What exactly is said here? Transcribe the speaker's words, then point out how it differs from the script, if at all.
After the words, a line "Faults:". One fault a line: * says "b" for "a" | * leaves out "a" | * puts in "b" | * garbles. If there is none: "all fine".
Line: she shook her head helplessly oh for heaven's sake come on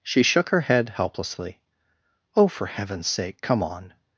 she shook her head helplessly oh for heaven's sake come on
Faults:
all fine